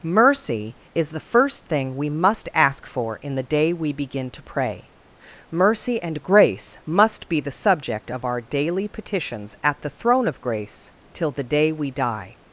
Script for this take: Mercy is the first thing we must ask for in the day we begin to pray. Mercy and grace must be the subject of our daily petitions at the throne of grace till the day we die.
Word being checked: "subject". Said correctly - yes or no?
yes